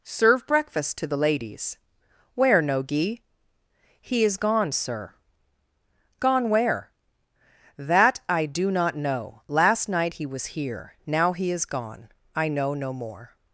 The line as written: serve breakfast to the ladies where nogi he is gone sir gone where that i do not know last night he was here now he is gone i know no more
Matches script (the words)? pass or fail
pass